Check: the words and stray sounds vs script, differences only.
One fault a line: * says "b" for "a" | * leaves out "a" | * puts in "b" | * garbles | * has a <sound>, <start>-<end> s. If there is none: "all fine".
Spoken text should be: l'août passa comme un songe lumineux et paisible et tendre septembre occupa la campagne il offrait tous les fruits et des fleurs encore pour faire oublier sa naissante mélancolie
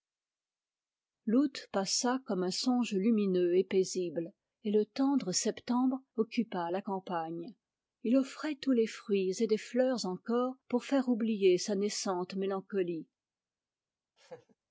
* puts in "le"
* has a laugh, 14.2-14.6 s